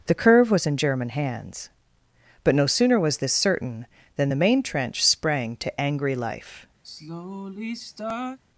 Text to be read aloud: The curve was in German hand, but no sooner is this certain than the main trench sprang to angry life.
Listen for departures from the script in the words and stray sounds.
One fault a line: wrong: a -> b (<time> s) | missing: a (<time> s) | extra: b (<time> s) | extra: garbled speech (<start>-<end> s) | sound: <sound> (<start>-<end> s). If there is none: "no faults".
wrong: hand -> hands (1.1 s)
wrong: is -> was (3.0 s)
sound: sigh (6.8-8.4 s)